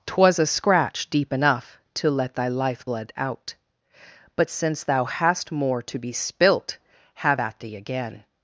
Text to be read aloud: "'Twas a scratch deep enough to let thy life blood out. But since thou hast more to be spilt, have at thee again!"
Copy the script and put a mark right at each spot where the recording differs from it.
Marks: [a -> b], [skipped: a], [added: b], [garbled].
"'Twas a scratch deep enough to let thy life blood out. But since thou hast more to be spilt, have at thee again!"